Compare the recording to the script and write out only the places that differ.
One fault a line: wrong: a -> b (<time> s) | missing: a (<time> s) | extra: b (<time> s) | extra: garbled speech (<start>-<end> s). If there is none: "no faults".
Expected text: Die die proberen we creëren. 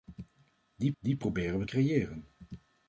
no faults